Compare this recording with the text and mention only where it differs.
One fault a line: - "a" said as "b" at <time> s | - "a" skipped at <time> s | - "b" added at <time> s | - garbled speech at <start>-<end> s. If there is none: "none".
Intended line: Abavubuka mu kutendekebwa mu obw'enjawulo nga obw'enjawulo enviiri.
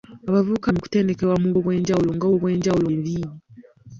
none